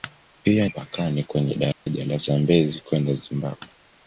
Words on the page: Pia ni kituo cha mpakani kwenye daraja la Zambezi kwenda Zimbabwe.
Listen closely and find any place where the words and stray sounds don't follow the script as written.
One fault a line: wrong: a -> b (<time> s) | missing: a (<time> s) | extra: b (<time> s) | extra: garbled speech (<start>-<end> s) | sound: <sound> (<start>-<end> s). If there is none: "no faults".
missing: ni kituo cha (0.7 s)
sound: dropout (1.7-1.9 s)